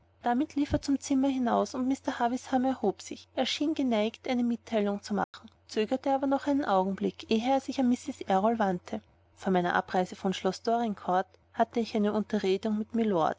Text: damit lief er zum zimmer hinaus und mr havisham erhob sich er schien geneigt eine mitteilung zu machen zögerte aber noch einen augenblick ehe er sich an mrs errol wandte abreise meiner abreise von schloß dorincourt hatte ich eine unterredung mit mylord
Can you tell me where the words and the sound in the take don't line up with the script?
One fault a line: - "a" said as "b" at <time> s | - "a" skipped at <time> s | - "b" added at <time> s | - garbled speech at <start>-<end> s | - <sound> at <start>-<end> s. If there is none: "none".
- dropout at 5.2-5.3 s
- "abreise" said as "vor" at 9.3 s